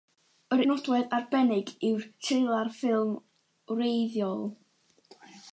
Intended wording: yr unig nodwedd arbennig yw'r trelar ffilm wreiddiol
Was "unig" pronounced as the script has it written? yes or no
no